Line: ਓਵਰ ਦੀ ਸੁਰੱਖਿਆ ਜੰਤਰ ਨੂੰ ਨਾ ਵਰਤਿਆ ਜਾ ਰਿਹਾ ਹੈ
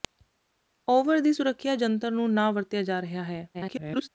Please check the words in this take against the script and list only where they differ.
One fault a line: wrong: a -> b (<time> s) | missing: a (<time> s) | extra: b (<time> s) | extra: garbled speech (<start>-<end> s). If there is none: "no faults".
extra: garbled speech (3.5-4.1 s)